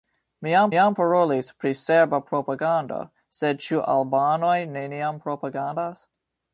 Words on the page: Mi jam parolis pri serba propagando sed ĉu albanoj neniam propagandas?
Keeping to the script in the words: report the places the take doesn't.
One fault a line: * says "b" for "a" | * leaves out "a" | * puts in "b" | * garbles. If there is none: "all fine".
* puts in "jam"